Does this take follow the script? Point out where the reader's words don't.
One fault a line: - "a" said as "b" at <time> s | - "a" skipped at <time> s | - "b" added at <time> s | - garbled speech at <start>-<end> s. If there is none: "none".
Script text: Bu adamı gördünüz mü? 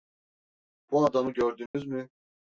none